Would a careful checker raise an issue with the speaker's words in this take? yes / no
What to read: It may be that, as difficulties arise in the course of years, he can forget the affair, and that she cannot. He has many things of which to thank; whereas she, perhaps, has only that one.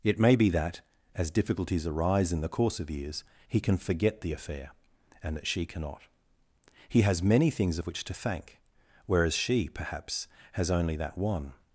no